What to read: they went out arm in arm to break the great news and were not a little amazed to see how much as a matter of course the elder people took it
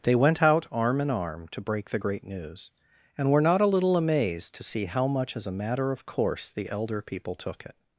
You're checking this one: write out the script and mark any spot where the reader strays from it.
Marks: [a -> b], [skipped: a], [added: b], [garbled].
they went out arm in arm to break the great news and were not a little amazed to see how much as a matter of course the elder people took it